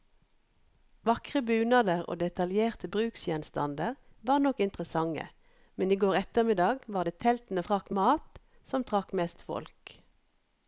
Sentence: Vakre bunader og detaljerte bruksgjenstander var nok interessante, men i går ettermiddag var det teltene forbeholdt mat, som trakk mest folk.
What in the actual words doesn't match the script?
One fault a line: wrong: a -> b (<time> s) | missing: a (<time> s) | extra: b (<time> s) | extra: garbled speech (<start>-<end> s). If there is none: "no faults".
wrong: forbeholdt -> trakk (7.6 s)